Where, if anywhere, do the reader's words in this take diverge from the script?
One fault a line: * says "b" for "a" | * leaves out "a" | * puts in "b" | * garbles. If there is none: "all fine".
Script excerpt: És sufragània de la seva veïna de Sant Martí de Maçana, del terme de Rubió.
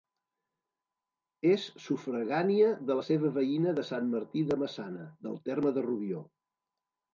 all fine